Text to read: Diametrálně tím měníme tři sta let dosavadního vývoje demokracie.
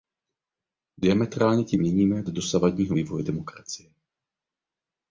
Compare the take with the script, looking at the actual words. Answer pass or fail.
fail